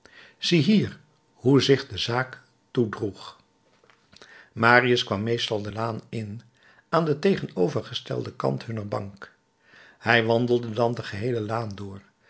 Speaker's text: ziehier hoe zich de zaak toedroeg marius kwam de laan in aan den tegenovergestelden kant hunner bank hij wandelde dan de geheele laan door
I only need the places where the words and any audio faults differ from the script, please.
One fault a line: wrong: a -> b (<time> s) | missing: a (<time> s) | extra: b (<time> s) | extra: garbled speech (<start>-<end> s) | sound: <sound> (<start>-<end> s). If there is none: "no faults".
extra: meestal (5.2 s)